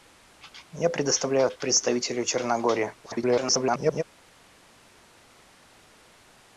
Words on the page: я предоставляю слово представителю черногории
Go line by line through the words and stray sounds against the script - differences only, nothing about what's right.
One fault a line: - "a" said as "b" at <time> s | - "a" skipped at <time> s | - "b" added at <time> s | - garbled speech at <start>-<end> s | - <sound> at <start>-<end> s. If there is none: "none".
- "слово" skipped at 1.5 s
- garbled speech at 3.0-4.0 s